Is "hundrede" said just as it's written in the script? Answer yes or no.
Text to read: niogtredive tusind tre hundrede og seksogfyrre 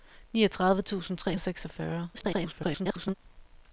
no